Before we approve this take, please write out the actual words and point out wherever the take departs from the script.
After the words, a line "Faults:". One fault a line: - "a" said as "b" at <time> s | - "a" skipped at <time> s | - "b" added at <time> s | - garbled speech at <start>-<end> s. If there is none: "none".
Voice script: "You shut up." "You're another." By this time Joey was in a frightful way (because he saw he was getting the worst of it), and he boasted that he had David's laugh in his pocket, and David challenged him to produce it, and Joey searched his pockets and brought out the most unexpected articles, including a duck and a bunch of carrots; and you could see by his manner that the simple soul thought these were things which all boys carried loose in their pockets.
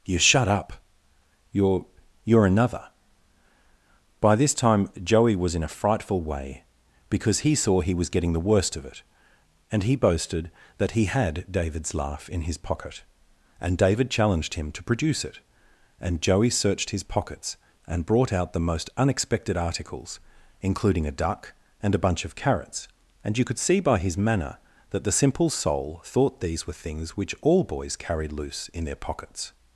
"You shut up." "You're You're another." By this time Joey was in a frightful way (because he saw he was getting the worst of it), and he boasted that he had David's laugh in his pocket, and David challenged him to produce it, and Joey searched his pockets and brought out the most unexpected articles, including a duck and a bunch of carrots; and you could see by his manner that the simple soul thought these were things which all boys carried loose in their pockets.
Faults:
- "You're" added at 2.2 s